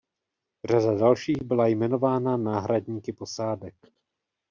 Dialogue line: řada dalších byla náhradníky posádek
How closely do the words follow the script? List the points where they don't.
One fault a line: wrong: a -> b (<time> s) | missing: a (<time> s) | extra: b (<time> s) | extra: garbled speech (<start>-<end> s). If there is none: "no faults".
extra: jmenována (1.7 s)